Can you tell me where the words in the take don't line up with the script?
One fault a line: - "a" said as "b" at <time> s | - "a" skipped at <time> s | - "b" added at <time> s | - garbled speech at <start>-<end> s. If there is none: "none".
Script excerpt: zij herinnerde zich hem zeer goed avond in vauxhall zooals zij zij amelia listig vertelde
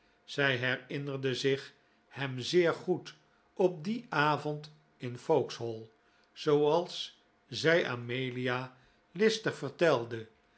- "op dien" added at 3.5 s
- "zij" skipped at 7.9 s